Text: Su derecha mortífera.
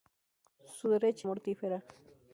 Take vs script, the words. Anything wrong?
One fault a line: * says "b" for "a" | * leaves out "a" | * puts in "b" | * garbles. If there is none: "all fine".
all fine